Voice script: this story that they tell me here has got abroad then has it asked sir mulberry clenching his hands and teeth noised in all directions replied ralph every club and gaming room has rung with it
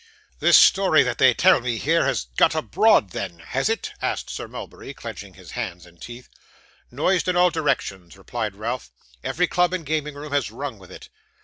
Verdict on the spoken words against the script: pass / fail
pass